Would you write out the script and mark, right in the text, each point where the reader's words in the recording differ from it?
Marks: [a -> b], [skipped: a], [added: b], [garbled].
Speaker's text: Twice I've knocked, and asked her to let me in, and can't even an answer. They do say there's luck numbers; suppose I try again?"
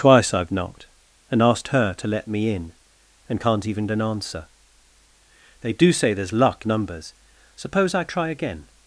Twice I've knocked, and asked her to let me in, and can't even an answer. They do say there's luck numbers; suppose I try again?"